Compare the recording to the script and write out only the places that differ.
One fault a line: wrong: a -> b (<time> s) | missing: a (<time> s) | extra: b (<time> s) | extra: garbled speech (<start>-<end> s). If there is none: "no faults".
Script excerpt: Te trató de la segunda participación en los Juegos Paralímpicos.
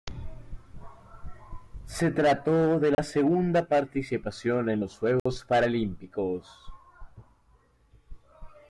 wrong: Te -> Se (1.9 s)